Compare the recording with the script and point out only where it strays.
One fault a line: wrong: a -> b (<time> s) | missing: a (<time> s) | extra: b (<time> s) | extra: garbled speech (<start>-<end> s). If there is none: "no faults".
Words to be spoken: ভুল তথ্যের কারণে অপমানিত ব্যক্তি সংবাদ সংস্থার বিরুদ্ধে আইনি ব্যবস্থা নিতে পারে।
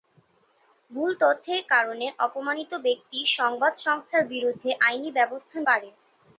missing: নিতে (5.6 s)